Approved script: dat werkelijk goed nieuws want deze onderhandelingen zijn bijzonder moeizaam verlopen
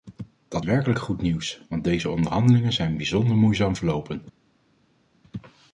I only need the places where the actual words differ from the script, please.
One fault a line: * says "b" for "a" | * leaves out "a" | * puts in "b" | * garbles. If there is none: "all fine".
all fine